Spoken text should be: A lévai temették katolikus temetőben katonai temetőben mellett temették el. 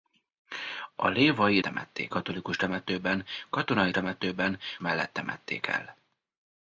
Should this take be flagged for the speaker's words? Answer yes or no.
no